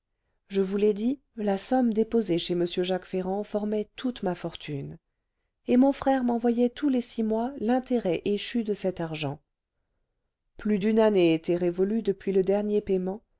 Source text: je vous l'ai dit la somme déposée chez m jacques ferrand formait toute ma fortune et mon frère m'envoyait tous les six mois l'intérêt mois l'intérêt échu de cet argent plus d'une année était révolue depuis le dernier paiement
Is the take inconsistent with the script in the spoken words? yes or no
yes